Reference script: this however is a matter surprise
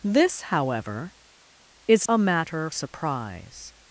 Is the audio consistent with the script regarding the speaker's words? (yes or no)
yes